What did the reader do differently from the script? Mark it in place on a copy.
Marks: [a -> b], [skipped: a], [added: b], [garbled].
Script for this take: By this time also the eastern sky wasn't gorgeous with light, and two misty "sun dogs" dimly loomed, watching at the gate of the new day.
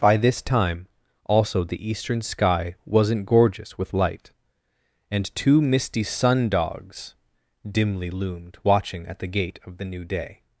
By this time also the eastern sky wasn't gorgeous with light, and two misty "sun dogs" dimly loomed, watching at the gate of the new day.